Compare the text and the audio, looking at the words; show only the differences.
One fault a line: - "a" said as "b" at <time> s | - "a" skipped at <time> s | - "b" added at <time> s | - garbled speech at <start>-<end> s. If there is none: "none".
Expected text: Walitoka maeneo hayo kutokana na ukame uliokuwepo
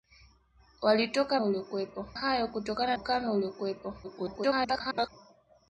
- "maeneo" said as "uliokuwepo" at 1.4 s
- "na" skipped at 3.0 s
- garbled speech at 4.0-5.1 s